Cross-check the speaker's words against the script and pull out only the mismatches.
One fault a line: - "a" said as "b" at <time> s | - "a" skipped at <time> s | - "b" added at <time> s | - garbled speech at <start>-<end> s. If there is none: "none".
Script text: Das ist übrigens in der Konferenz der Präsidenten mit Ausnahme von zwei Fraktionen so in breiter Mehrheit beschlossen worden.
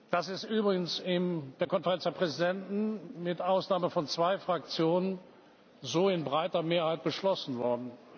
none